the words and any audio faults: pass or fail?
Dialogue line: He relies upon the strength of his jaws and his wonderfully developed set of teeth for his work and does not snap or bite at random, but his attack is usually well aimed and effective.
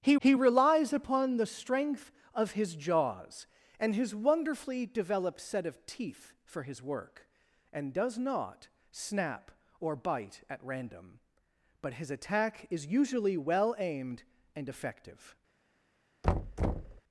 fail